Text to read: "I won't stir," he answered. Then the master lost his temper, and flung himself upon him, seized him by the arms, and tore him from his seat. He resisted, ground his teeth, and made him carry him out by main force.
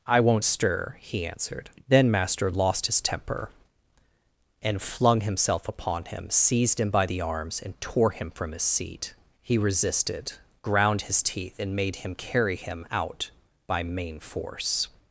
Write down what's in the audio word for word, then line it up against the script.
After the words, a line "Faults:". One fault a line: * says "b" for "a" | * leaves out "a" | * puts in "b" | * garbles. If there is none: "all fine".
"I won't stir," he answered. Then master lost his temper, and flung himself upon him, seized him by the arms, and tore him from his seat. He resisted, ground his teeth, and made him carry him out by main force.
Faults:
* leaves out "the"